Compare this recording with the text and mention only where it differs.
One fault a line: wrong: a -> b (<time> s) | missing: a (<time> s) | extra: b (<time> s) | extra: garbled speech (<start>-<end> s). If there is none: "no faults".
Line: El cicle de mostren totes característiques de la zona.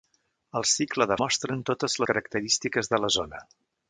no faults